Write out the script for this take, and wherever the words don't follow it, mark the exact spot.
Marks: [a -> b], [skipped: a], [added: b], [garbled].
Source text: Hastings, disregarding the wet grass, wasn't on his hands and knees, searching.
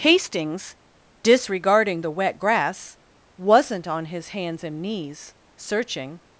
Hastings, disregarding the wet grass, wasn't on his hands and knees, searching.